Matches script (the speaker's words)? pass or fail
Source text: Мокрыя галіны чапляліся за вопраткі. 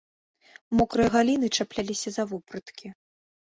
pass